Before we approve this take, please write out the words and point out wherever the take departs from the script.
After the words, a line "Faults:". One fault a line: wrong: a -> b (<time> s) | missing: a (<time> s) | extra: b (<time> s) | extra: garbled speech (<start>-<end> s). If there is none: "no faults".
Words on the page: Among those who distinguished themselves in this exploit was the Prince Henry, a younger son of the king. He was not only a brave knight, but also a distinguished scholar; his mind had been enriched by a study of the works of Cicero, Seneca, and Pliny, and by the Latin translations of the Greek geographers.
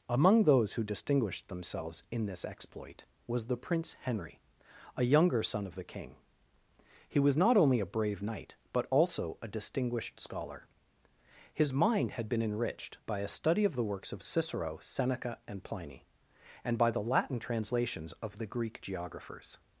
Among those who distinguished themselves in this exploit was the Prince Henry, a younger son of the king. He was not only a brave knight, but also a distinguished scholar; his mind had been enriched by a study of the works of Cicero, Seneca, and Pliny, and by the Latin translations of the Greek geographers.
Faults:
no faults